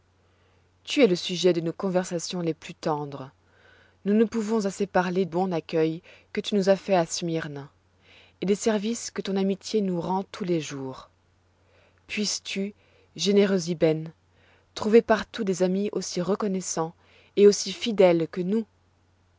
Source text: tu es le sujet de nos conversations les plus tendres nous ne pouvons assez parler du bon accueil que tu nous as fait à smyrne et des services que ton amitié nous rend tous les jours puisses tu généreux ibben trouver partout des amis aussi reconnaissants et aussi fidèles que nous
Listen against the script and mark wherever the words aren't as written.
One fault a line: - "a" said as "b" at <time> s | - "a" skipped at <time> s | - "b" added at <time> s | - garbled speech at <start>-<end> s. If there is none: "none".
- "du" skipped at 5.2 s